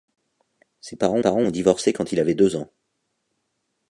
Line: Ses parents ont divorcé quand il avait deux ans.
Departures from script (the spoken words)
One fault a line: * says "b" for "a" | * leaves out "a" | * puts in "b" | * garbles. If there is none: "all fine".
* puts in "parents"